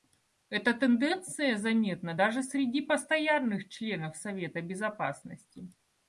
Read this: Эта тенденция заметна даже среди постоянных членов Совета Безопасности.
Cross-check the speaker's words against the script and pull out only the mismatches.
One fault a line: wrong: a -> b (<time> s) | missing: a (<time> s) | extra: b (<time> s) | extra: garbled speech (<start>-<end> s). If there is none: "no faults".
no faults